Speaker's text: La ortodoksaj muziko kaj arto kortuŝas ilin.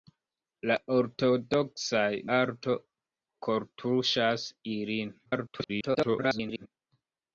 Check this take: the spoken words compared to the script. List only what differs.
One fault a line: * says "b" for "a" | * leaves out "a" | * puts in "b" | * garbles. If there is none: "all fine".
* leaves out "muziko kaj"
* garbles